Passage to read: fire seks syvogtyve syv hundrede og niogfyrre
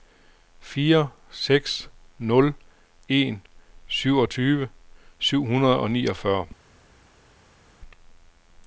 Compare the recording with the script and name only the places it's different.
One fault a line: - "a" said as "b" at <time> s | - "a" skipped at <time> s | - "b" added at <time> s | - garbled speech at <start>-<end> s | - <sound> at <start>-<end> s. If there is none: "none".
- "nul en" added at 2.2 s